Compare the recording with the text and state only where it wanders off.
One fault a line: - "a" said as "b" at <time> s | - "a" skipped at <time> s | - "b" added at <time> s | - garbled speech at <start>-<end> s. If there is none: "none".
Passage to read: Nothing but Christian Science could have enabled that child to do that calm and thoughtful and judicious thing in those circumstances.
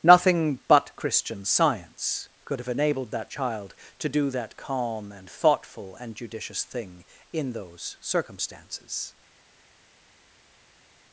none